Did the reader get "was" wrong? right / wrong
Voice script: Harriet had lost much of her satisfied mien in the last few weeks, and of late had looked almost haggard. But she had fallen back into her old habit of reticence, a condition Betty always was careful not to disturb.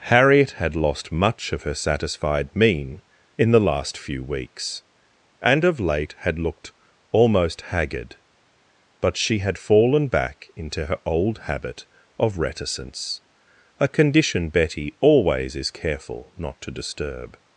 wrong